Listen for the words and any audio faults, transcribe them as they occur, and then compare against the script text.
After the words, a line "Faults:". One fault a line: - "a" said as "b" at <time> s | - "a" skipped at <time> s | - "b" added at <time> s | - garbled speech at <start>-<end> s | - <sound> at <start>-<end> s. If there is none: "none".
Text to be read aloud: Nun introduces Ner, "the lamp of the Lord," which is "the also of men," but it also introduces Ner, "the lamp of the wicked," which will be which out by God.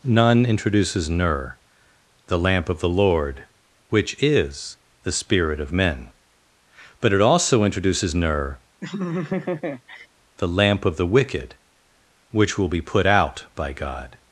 Nun introduces Ner, "the lamp of the Lord," which is "the spirit of men," but it also introduces Ner, "the lamp of the wicked," which will be put out by God.
Faults:
- "also" said as "spirit" at 5.1 s
- laugh at 8.8-10.1 s
- "which" said as "put" at 12.8 s